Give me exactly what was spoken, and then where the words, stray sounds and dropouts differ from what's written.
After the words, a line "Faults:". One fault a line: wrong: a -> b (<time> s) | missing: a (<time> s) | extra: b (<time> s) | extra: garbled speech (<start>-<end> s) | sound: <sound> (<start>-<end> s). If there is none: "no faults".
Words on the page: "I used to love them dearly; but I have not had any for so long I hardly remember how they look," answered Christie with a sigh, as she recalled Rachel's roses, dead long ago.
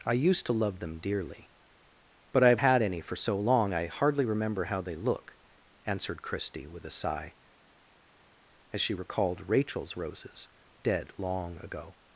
"I used to love them dearly; but I have had any for so long I hardly remember how they look," answered Christie with a sigh, as she recalled Rachel's roses, dead long ago.
Faults:
missing: not (2.6 s)